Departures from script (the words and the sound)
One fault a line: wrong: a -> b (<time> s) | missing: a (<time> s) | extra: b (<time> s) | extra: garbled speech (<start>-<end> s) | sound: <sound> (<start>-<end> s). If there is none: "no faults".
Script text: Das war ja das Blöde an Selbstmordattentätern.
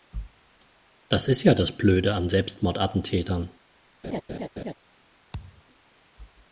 wrong: war -> ist (1.3 s)
sound: laugh (4.0-4.7 s)
sound: thud (5.3-5.6 s)